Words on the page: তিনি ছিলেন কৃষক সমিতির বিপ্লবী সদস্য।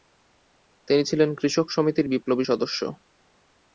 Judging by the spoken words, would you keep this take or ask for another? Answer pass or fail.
pass